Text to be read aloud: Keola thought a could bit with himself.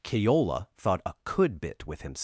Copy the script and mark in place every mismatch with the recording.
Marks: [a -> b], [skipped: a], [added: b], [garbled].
Keola thought a could bit with himself.